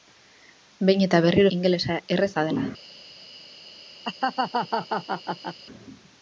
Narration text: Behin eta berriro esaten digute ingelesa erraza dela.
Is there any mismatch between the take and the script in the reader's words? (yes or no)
yes